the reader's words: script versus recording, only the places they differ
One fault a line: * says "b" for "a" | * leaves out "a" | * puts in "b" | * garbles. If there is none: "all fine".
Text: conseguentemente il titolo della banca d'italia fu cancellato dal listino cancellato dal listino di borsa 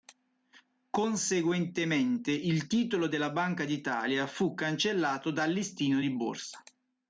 * leaves out "cancellato dal listino"